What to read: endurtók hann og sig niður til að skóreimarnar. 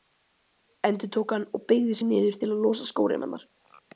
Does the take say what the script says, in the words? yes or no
no